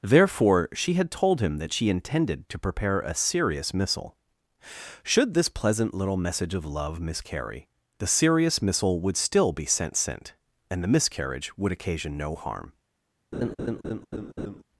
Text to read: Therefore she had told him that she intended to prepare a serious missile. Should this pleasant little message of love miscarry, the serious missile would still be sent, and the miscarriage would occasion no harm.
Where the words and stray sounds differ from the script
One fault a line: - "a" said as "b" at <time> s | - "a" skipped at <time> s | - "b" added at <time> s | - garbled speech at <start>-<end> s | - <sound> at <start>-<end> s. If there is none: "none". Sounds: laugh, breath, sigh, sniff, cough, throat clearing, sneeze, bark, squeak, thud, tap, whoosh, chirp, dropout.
- "sent" added at 9.9 s
- laugh at 13.3-14.6 s